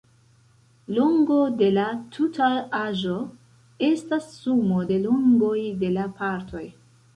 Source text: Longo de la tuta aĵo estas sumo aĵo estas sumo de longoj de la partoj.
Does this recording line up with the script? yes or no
no